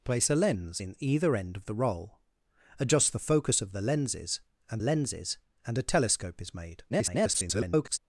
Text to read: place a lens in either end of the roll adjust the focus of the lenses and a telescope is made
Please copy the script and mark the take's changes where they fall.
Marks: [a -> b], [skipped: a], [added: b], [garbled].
place a lens in either end of the roll adjust the focus of the lenses and [added: lenses and] a telescope is made [garbled]